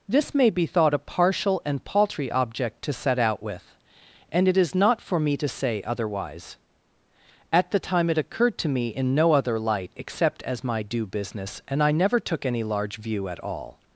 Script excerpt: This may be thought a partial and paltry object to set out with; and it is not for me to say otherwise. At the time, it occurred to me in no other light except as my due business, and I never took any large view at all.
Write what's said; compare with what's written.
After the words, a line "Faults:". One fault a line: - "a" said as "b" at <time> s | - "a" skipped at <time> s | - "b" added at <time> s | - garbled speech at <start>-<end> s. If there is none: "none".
This may be thought a partial and paltry object to set out with; and it is not for me to say otherwise. At the time, it occurred to me in no other light except as my due business, and I never took any large view at all.
Faults:
none